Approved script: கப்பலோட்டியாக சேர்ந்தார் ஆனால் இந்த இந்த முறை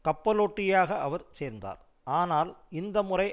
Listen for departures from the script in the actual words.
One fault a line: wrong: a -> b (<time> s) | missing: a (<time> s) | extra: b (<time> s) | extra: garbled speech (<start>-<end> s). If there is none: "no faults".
extra: அவர் (1.0 s)
missing: இந்த (3.0 s)